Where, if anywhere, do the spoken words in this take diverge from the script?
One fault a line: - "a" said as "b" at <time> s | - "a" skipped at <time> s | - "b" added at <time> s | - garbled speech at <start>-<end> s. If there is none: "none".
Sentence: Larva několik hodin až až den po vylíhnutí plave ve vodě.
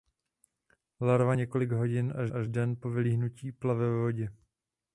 none